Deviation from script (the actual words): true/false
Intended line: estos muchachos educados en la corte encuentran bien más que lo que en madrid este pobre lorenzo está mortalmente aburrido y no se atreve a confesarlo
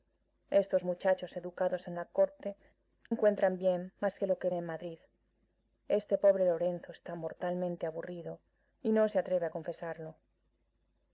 false